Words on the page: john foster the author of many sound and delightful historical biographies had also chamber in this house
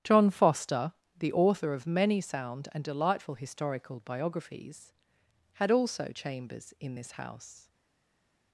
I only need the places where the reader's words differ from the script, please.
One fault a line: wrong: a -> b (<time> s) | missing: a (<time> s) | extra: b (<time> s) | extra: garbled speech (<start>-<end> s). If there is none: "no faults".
wrong: chamber -> chambers (6.1 s)